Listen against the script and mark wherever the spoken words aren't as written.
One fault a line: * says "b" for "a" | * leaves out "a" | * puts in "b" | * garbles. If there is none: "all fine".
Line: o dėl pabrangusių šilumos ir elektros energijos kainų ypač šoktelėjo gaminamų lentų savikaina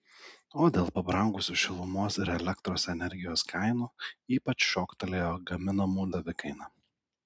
* leaves out "lentų"